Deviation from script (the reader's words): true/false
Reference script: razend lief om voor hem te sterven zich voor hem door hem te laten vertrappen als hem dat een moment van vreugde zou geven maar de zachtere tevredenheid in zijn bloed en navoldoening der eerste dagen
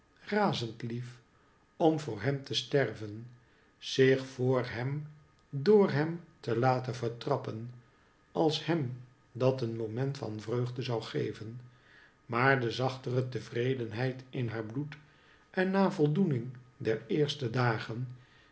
true